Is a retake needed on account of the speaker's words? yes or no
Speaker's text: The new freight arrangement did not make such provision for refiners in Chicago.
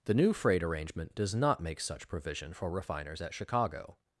yes